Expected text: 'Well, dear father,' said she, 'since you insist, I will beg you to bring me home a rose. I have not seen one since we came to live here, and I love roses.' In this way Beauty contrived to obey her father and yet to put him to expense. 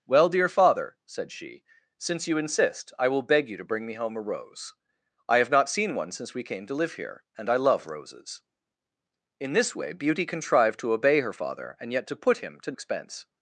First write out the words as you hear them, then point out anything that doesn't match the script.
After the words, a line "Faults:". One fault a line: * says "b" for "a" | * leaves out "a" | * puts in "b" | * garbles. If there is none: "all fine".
'Well, dear father,' said she, 'since you insist, I will beg you to bring me home a rose. I have not seen one since we came to live here, and I love roses.' In this way Beauty contrived to obey her father and yet to put him to expense.
Faults:
all fine